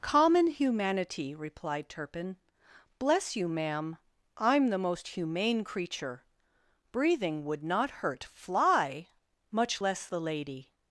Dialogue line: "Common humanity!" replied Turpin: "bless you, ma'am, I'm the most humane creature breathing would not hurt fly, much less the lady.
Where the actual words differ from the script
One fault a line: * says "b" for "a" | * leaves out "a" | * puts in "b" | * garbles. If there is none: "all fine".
all fine